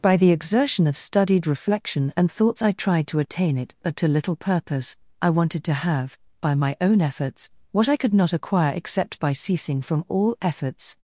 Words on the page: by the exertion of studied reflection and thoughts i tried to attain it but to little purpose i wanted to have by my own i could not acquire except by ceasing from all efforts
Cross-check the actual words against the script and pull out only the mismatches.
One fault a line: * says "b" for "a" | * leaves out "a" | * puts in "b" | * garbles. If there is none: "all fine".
* puts in "efforts what"